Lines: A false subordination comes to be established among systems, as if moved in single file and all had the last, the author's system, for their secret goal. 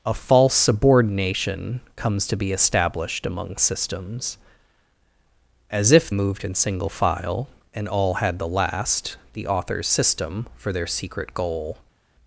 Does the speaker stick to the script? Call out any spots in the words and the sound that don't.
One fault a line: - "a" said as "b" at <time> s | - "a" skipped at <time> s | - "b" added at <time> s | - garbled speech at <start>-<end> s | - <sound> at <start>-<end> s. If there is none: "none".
none